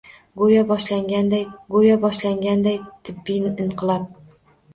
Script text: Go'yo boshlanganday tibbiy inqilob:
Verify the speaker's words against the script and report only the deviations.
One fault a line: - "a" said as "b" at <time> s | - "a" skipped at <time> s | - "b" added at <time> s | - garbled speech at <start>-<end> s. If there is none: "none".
- "go'yo boshlanganday" added at 1.8 s